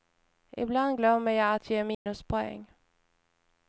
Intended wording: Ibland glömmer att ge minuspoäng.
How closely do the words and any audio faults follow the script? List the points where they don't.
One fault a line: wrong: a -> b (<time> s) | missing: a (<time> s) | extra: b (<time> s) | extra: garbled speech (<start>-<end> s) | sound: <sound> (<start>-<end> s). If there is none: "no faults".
extra: jag (1.3 s)
sound: dropout (1.9-2.1 s)